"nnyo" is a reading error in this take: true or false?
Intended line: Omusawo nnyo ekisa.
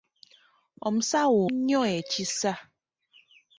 false